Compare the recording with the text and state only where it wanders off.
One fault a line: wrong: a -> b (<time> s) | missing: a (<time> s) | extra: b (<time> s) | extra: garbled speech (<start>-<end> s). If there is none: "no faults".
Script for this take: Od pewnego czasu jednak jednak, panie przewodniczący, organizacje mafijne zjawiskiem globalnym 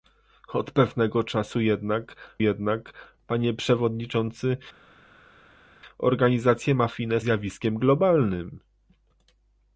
no faults